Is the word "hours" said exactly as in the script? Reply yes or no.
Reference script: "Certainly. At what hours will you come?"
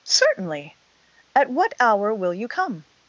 no